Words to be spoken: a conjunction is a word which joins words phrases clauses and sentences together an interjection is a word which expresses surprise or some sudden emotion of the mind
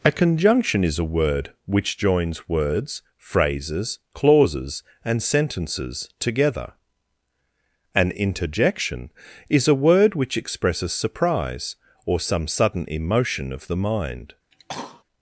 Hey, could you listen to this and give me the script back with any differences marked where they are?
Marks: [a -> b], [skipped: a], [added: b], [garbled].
a conjunction is a word which joins words phrases clauses and sentences together an interjection is a word which expresses surprise or some sudden emotion of the mind